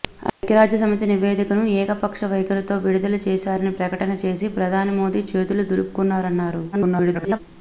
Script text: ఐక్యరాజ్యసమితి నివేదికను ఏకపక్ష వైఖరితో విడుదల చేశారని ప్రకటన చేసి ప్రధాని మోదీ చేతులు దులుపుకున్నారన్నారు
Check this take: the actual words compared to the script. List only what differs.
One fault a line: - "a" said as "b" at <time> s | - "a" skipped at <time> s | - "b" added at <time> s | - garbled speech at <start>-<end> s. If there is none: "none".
- garbled speech at 6.7-7.4 s